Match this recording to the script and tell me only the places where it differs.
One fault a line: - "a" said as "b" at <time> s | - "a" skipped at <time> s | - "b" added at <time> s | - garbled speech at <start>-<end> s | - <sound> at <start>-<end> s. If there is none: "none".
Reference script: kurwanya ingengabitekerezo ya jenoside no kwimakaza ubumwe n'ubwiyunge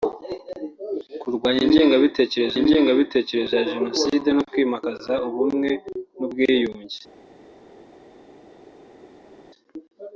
- "ingengabitekerezo" added at 2.6 s